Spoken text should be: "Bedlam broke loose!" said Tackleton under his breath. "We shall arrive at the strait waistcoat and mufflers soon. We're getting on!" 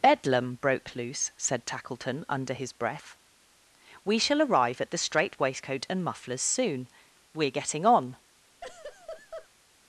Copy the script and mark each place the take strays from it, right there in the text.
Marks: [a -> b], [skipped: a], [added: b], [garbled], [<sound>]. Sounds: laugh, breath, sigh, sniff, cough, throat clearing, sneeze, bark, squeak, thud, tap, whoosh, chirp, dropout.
"Bedlam broke loose!" said Tackleton under his breath. "We shall arrive at the strait waistcoat and mufflers soon. We're getting on!" [laugh]